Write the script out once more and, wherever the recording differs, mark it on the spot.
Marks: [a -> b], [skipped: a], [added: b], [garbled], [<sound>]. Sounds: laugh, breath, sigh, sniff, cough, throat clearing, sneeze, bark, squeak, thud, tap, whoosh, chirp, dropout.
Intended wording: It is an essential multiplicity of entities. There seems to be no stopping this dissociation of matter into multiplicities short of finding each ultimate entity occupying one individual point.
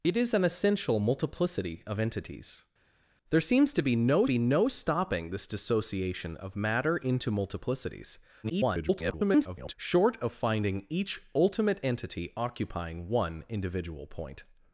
It is an essential multiplicity of entities. There seems to be no [added: be no] stopping this dissociation of matter into multiplicities [garbled] short of finding each ultimate entity occupying one individual point.